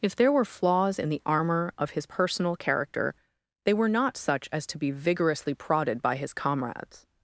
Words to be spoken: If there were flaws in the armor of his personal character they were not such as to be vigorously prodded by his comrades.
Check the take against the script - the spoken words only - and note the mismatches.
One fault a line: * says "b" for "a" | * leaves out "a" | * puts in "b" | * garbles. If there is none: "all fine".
all fine